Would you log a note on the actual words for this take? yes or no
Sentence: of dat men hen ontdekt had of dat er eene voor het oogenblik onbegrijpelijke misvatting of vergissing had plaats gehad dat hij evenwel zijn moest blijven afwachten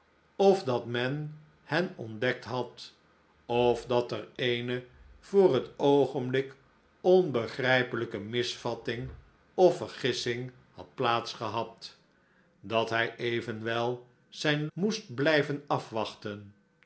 no